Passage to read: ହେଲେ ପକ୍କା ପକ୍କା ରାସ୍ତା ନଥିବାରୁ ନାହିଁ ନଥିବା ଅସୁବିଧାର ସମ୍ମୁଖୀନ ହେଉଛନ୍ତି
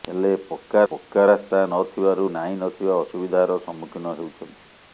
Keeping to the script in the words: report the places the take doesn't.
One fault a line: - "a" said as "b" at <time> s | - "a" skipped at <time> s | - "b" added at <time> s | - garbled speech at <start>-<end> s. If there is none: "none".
none